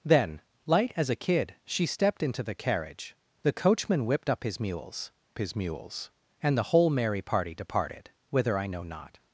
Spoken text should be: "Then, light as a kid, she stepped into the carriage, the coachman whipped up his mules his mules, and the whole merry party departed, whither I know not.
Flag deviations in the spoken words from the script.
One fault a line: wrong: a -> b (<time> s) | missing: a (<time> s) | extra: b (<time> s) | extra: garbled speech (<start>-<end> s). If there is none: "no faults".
no faults